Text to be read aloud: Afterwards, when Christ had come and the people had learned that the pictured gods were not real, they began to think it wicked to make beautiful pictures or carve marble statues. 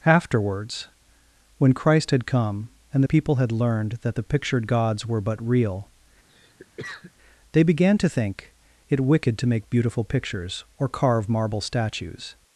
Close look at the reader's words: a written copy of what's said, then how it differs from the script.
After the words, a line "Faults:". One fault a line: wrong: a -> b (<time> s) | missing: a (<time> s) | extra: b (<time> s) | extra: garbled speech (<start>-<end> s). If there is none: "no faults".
Afterwards, when Christ had come and the people had learned that the pictured gods were but real, they began to think it wicked to make beautiful pictures or carve marble statues.
Faults:
wrong: not -> but (5.2 s)